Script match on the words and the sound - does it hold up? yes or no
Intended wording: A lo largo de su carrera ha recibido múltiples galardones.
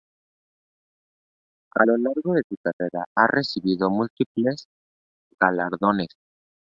yes